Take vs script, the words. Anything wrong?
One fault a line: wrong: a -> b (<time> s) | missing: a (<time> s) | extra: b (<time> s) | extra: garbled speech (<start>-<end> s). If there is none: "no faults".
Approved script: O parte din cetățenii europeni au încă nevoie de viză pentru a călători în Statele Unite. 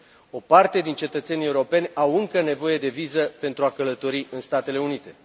no faults